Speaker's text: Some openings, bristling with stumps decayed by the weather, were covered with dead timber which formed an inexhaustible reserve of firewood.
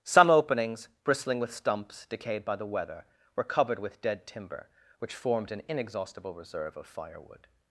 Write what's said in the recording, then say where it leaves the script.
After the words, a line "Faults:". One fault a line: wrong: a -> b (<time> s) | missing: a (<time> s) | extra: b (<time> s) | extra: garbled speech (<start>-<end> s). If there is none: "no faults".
Some openings, bristling with stumps decayed by the weather, were covered with dead timber which formed an inexhaustible reserve of firewood.
Faults:
no faults